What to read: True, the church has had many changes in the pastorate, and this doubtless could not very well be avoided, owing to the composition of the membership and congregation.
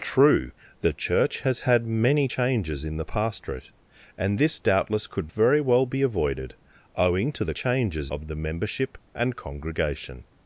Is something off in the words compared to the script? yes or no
yes